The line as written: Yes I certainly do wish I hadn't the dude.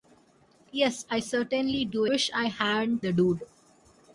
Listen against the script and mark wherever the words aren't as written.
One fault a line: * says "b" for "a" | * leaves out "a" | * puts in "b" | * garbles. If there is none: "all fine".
all fine